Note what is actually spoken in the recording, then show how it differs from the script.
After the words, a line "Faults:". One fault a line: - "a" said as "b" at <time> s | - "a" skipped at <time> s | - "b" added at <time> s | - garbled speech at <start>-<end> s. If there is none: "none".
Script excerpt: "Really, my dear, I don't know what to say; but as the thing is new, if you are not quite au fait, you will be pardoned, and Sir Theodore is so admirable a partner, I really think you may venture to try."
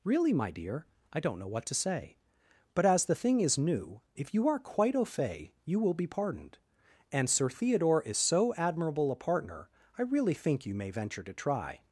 "Really, my dear, I don't know what to say; but as the thing is new, if you are quite au fait, you will be pardoned, and Sir Theodore is so admirable a partner, I really think you may venture to try."
Faults:
- "not" skipped at 4.6 s